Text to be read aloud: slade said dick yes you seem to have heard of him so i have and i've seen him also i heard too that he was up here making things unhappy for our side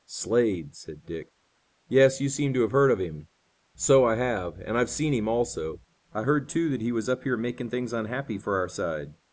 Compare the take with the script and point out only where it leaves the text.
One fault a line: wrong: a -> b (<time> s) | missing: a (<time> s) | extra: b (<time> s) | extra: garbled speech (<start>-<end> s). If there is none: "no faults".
no faults